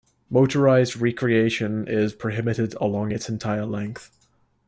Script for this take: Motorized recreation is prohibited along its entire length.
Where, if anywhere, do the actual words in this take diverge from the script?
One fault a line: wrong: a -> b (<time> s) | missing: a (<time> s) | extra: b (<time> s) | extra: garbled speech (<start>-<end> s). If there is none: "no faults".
no faults